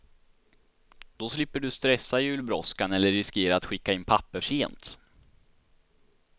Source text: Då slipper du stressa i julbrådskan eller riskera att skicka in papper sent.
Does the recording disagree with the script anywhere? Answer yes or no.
no